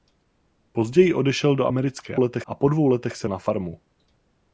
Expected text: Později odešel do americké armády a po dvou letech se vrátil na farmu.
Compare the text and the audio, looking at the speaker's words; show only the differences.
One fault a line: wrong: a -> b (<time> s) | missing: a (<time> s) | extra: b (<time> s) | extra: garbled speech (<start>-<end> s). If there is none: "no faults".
wrong: armády -> letech (2.2 s)
missing: vrátil (3.3 s)